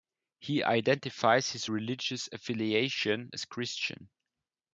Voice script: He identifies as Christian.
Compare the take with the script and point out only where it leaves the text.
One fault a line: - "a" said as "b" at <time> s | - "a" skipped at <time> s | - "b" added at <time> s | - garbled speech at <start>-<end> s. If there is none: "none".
- "his religious affiliation" added at 1.5 s